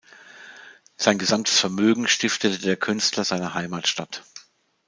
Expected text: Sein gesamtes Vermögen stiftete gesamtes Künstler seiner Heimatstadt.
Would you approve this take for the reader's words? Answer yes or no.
no